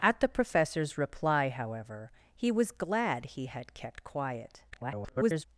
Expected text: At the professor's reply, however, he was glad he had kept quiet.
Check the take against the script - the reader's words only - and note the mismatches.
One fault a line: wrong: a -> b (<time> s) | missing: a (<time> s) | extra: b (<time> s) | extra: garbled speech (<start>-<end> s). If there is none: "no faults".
extra: garbled speech (4.7-5.5 s)